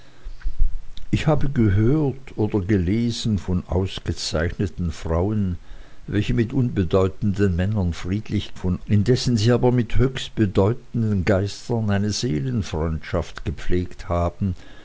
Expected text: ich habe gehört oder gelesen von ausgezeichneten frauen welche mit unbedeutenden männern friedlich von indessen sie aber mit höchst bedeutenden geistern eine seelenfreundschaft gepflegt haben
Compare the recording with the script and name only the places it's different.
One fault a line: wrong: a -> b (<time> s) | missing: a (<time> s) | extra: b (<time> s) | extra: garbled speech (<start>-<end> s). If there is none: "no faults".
no faults